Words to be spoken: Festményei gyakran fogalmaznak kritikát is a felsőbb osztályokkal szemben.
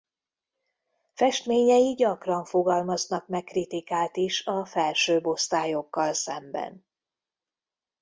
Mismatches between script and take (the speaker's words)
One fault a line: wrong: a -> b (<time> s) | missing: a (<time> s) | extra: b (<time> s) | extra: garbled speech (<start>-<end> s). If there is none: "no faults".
extra: meg (3.3 s)